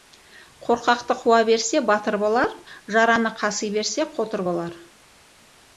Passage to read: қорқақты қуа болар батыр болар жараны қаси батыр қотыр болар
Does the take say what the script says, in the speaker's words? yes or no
no